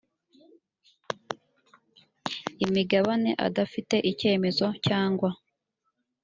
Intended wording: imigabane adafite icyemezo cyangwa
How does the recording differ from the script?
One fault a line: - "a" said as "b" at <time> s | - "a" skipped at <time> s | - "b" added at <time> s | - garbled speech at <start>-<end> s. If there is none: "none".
none